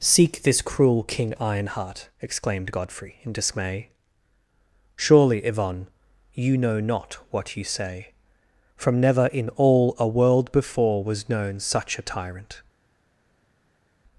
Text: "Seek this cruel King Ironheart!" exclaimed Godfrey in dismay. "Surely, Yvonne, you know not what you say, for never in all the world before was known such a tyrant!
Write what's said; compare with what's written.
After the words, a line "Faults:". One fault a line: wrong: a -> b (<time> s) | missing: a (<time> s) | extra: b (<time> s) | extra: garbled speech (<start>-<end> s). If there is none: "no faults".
"Seek this cruel King Ironheart!" exclaimed Godfrey in dismay. "Surely, Yvonne, you know not what you say, from never in all a world before was known such a tyrant!
Faults:
wrong: for -> from (8.8 s)
wrong: the -> a (10.0 s)